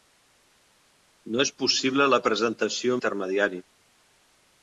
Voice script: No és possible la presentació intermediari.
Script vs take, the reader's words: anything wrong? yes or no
no